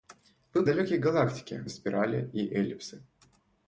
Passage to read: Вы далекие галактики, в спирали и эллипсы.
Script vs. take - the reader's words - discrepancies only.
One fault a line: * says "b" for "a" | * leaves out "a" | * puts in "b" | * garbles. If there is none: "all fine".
all fine